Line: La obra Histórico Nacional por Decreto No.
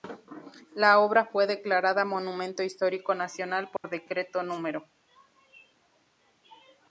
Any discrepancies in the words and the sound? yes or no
yes